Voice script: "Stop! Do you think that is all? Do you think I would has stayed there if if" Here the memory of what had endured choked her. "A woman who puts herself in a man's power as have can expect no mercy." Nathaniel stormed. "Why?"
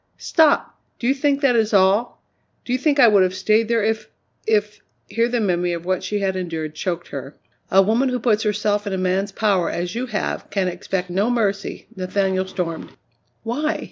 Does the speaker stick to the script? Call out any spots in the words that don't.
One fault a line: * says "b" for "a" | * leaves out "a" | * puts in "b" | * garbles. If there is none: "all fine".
* says "have" for "has"
* puts in "she"
* puts in "you"